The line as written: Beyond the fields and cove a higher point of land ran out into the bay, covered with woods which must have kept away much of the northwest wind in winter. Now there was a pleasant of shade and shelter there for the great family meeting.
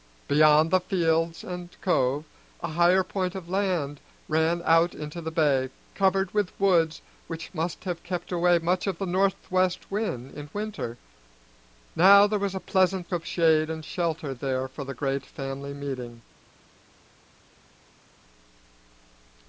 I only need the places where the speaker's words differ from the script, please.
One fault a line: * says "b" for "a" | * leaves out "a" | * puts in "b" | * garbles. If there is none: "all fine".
all fine